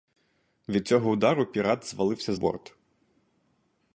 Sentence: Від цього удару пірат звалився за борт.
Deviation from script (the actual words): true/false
true